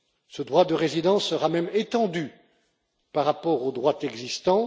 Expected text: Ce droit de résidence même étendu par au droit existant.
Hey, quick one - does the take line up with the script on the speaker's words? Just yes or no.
no